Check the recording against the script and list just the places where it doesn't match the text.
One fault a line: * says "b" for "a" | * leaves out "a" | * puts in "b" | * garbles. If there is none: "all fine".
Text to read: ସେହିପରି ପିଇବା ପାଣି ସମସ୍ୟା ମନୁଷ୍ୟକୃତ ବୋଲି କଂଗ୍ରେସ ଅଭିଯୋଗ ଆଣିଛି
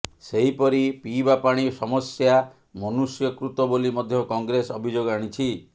* puts in "ମଧ୍ୟ"